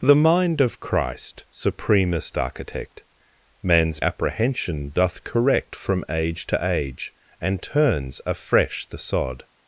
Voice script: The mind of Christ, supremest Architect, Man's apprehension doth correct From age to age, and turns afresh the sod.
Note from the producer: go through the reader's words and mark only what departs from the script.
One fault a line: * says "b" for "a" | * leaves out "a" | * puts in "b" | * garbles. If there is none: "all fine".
all fine